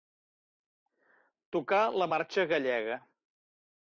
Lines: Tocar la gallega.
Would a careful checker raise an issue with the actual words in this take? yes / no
yes